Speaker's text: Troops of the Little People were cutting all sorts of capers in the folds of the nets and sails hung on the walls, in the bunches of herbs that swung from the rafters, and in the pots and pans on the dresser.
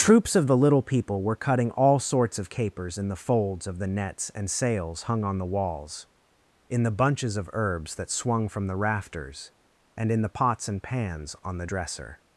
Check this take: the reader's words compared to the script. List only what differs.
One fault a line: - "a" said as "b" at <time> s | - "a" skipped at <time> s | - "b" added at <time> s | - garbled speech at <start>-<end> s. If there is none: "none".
none